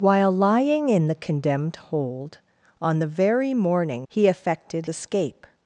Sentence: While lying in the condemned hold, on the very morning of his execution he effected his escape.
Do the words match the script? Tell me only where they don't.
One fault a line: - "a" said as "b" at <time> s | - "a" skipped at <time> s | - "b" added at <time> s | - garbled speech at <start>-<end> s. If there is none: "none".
- "of his execution" skipped at 4.1 s
- "his" skipped at 4.9 s